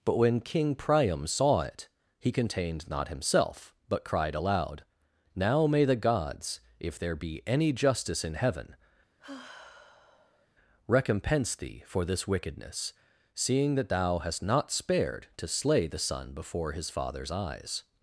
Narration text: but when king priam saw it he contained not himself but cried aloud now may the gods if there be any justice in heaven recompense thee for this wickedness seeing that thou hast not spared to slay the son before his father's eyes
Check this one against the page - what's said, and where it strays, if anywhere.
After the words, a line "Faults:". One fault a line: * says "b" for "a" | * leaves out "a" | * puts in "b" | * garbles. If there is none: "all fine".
but when king priam saw it he contained not himself but cried aloud now may the gods if there be any justice in heaven recompense thee for this wickedness seeing that thou hast not spared to slay the son before his father's eyes
Faults:
all fine